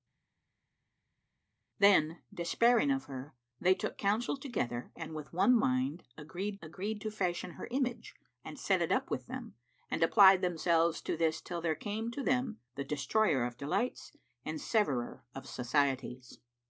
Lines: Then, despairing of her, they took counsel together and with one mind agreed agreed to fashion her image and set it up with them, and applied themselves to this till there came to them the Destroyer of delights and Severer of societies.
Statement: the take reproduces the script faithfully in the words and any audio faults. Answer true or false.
true